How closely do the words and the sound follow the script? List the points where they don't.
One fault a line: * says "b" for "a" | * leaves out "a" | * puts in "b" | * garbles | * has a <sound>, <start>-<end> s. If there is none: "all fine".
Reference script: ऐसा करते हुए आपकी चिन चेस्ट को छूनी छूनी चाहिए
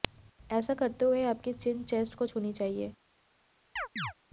* leaves out "छूनी"
* has a chirp, 3.8-4.1 s